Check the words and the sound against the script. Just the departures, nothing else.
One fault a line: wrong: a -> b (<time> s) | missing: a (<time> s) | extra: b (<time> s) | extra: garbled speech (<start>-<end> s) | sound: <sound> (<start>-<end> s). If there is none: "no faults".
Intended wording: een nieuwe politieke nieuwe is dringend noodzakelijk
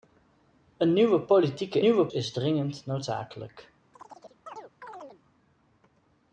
sound: chirp (3.9-5.2 s)